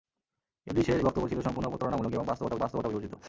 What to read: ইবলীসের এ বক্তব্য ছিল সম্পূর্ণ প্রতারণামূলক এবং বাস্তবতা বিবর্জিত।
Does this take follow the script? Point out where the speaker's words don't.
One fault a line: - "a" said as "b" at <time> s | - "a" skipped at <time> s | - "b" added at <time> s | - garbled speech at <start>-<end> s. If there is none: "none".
- "এ" skipped at 1.0 s
- "বাস্তবতা" added at 2.6 s